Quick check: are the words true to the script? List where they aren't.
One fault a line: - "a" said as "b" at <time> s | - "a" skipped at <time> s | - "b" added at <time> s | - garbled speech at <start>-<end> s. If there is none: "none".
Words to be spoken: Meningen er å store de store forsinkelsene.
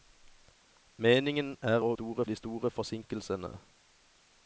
none